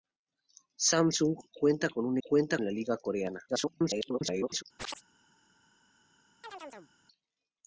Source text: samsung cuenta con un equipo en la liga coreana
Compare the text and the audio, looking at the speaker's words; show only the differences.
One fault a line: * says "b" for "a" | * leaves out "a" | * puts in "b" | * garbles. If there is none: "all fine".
* says "cuenta" for "equipo"
* garbles